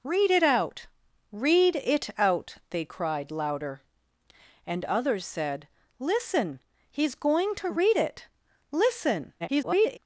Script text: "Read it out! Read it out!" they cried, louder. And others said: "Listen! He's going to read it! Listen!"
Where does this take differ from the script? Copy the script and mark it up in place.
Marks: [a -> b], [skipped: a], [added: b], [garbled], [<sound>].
"Read it out! Read it out!" they cried, louder. And others said: "Listen! He's going to read it! Listen!" [garbled]